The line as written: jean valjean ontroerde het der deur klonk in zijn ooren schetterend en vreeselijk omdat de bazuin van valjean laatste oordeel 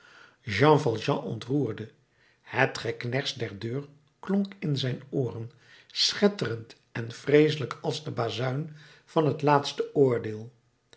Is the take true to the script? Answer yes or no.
no